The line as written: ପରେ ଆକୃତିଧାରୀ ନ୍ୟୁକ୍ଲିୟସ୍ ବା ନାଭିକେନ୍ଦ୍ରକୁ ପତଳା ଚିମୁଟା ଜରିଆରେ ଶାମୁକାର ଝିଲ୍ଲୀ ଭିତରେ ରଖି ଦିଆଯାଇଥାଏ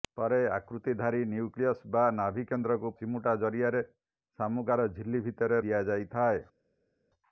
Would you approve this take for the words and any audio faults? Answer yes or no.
no